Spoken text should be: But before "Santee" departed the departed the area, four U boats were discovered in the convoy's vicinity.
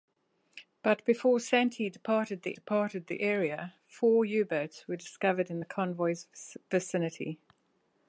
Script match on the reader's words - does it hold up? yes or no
yes